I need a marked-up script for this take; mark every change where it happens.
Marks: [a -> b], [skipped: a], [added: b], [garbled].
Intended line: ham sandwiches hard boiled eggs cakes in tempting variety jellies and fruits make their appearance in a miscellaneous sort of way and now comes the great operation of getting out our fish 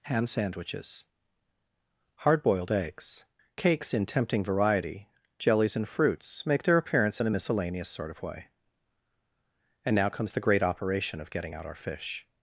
ham sandwiches hard boiled eggs cakes in tempting variety jellies and fruits make their appearance in a miscellaneous sort of way and now comes the great operation of getting out our fish